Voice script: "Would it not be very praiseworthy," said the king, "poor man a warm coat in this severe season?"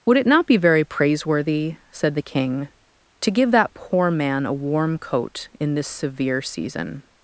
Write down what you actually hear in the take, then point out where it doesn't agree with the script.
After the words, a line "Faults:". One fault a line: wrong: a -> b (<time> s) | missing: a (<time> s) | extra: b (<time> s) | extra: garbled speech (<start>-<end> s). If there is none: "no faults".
"Would it not be very praiseworthy," said the king, "to give that poor man a warm coat in this severe season?"
Faults:
extra: to give that (3.2 s)